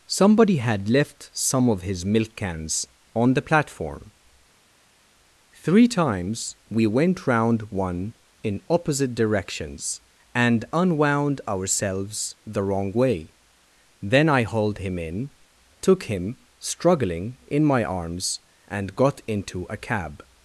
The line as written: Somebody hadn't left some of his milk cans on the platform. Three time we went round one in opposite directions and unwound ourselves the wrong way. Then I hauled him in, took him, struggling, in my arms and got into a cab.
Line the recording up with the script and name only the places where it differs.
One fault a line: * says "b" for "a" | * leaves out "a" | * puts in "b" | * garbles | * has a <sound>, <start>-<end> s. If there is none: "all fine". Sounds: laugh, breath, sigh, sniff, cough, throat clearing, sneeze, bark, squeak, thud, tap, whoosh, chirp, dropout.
* says "had" for "hadn't"
* says "times" for "time"